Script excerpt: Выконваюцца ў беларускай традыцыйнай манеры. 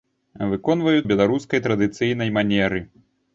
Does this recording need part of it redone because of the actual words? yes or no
yes